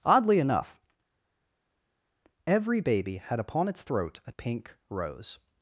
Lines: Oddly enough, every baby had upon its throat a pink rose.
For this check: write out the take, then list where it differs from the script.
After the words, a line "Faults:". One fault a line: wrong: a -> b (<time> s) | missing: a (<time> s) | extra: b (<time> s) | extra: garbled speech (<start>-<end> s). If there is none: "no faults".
Oddly enough, every baby had upon its throat a pink rose.
Faults:
no faults